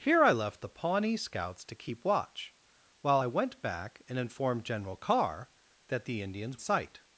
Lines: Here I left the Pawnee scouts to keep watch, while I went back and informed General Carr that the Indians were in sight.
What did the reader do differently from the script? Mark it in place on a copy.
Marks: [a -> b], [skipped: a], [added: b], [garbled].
Here I left the Pawnee scouts to keep watch, while I went back and informed General Carr that the Indians [skipped: were in] sight.